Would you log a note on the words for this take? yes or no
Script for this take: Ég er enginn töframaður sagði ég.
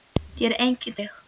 yes